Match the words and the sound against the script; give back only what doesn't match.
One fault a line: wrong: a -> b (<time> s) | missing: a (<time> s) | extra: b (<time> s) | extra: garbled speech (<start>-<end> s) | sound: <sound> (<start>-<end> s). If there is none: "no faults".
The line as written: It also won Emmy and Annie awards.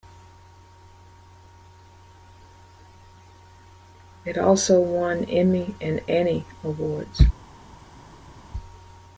no faults